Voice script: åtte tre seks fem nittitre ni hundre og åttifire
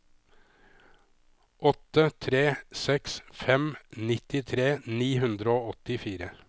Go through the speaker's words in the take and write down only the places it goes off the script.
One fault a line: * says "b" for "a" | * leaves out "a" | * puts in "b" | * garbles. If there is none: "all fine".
all fine